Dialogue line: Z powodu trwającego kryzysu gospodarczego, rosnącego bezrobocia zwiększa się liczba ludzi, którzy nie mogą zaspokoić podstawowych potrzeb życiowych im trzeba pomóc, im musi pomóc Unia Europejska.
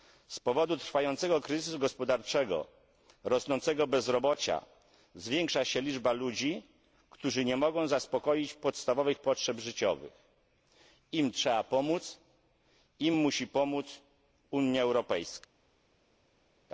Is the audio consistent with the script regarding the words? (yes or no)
yes